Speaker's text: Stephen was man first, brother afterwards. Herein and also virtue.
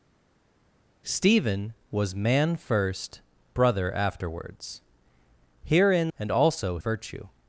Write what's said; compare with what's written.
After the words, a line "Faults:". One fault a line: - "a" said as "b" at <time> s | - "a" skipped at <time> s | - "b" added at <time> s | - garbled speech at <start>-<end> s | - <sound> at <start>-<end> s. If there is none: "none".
Stephen was man first, brother afterwards. Herein and also virtue.
Faults:
none